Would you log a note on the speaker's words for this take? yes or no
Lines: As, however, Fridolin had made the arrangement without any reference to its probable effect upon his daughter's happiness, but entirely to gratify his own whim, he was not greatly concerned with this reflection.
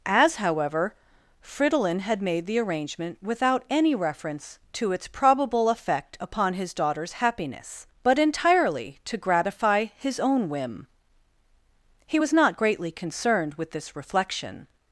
no